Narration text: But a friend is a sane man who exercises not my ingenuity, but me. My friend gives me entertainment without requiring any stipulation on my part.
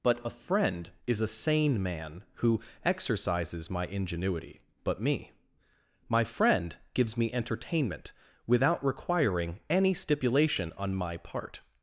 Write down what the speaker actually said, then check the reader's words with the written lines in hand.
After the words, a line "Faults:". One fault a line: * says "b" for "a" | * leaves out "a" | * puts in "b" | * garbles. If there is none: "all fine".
But a friend is a sane man who exercises my ingenuity, but me. My friend gives me entertainment without requiring any stipulation on my part.
Faults:
* leaves out "not"